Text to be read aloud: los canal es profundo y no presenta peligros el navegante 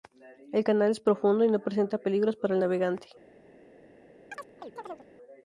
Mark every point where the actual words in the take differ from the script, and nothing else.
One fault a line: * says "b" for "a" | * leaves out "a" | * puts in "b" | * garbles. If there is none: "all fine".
* says "el" for "los"
* puts in "para"